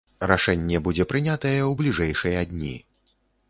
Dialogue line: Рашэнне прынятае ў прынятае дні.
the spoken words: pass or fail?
fail